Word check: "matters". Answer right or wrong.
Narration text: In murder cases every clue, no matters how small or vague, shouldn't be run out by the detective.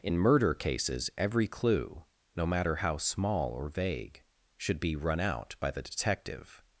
wrong